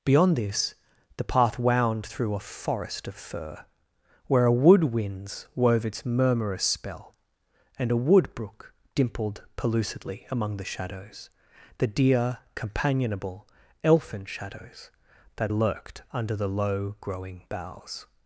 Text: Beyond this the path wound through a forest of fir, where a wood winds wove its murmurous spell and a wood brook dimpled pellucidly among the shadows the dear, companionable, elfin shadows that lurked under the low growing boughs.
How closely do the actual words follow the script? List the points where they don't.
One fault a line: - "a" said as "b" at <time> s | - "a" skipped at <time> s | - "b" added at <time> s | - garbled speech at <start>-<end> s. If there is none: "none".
none